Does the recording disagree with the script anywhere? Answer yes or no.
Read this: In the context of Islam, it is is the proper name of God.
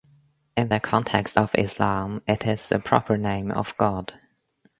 yes